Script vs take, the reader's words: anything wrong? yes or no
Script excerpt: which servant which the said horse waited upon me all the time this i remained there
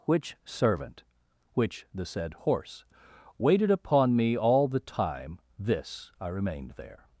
no